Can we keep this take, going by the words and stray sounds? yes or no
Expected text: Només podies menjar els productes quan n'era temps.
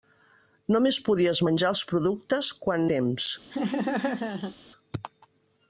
no